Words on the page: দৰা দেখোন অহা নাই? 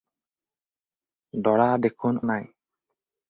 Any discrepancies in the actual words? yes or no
yes